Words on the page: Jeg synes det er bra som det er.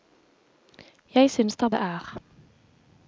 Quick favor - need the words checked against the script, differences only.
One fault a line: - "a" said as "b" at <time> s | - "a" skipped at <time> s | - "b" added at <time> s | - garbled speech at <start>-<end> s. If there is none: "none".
- "bra som" skipped at 1.7 s